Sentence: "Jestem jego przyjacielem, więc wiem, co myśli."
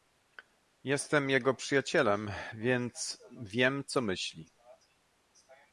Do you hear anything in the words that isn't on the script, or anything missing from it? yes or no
no